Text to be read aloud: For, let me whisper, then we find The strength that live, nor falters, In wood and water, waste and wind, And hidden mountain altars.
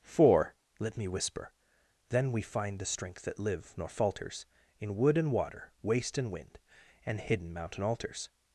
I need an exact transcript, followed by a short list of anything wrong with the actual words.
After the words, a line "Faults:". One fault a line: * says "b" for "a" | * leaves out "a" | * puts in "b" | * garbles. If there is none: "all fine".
For, let me whisper, then we find The strength that live, nor falters, In wood and water, waste and wind, And hidden mountain altars.
Faults:
all fine